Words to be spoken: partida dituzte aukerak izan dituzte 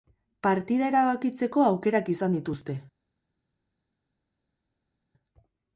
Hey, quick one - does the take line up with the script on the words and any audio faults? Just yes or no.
no